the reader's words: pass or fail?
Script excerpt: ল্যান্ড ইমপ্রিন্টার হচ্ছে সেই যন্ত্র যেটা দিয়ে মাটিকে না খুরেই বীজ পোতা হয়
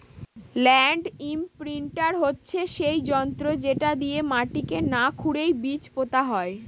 pass